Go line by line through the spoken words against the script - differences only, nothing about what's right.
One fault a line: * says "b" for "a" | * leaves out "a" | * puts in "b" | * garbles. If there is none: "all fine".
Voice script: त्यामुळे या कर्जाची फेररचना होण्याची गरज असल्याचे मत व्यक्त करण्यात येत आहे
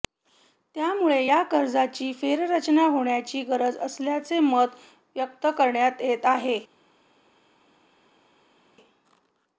all fine